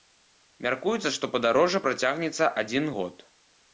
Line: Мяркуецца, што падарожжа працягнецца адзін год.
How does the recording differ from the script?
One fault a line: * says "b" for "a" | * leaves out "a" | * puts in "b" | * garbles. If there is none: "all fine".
all fine